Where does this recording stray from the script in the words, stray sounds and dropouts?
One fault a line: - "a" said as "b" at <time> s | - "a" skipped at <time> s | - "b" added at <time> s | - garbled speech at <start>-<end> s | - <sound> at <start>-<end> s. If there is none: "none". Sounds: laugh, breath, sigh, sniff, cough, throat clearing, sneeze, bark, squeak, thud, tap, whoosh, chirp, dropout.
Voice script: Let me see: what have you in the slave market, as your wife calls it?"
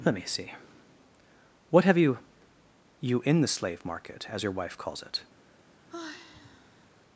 - "you" added at 3.0 s
- sigh at 5.9-6.9 s